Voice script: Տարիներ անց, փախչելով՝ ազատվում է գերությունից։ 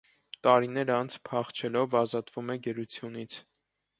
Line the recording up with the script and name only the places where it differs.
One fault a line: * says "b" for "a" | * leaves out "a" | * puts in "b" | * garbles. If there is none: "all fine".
all fine